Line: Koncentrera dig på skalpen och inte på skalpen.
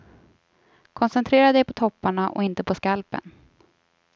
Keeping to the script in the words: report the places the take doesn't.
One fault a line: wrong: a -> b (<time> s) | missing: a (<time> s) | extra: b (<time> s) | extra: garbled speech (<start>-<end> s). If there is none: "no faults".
wrong: skalpen -> topparna (1.7 s)